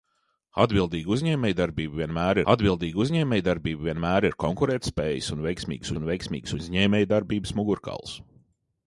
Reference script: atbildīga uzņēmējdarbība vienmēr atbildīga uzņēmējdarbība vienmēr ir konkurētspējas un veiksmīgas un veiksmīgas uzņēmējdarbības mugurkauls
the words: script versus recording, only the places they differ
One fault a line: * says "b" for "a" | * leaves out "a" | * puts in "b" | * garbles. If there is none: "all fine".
all fine